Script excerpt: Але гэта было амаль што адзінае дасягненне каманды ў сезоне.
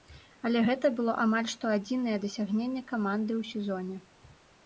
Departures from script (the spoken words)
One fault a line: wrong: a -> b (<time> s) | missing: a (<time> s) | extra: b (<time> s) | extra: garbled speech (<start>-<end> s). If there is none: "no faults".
no faults